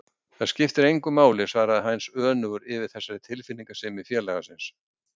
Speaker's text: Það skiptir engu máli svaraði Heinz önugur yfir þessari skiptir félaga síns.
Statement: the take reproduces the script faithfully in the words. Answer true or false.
false